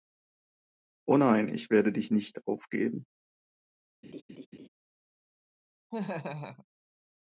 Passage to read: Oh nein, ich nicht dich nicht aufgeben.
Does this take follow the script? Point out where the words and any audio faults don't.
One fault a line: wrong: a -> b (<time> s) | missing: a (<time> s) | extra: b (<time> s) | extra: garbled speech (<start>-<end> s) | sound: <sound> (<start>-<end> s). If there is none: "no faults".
wrong: nicht -> werde (1.7 s)
sound: laugh (4.0-4.7 s)
sound: laugh (5.9-6.7 s)